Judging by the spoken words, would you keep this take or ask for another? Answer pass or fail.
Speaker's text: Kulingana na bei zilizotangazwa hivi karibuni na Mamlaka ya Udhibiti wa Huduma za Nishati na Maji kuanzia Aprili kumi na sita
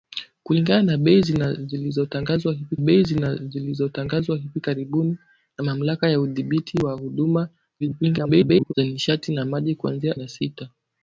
fail